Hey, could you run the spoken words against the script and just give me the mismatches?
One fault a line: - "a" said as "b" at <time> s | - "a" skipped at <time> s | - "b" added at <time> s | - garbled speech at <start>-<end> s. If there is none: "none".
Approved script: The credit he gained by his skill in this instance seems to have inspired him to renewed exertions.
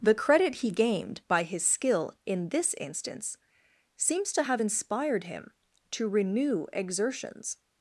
- "renewed" said as "renew" at 6.1 s